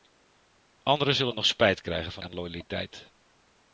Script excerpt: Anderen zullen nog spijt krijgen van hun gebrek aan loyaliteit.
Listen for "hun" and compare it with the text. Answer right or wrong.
wrong